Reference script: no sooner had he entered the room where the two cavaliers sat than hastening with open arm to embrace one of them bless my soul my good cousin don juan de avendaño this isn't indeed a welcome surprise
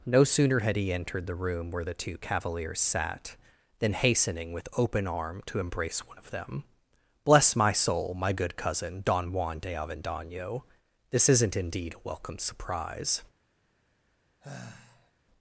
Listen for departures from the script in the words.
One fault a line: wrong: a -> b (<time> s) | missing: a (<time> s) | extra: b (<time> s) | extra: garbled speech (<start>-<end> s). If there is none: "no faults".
no faults